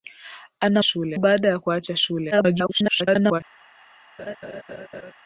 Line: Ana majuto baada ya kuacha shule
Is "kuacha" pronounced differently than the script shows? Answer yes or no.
no